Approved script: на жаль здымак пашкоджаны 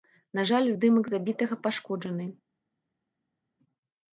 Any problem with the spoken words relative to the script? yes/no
yes